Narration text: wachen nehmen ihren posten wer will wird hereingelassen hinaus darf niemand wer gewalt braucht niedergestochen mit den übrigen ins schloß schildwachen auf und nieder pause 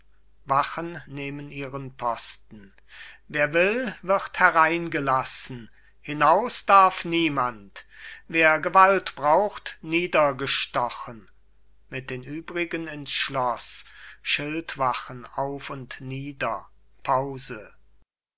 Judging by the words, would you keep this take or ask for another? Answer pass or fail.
pass